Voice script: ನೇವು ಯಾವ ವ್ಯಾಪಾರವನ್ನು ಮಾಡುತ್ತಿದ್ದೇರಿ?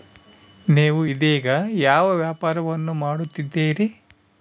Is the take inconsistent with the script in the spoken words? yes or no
yes